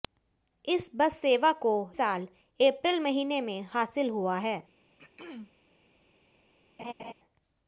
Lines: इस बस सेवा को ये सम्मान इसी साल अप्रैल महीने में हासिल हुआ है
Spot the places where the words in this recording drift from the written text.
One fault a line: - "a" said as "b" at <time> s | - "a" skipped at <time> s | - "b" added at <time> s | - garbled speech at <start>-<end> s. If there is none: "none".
- "ये सम्मान इसी" skipped at 1.7 s